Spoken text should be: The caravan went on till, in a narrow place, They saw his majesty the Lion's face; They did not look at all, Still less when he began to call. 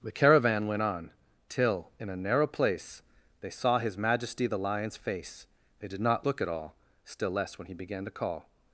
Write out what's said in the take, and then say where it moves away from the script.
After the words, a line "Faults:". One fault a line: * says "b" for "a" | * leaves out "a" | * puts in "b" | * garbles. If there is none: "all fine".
The caravan went on till, in a narrow place, They saw his majesty the Lion's face; They did not look at all, Still less when he began to call.
Faults:
all fine